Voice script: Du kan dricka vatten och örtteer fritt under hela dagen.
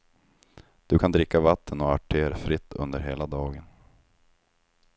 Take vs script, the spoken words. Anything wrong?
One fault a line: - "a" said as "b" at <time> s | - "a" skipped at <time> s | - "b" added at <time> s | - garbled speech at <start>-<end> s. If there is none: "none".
none